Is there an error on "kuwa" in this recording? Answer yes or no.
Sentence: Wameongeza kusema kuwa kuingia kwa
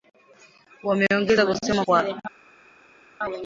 yes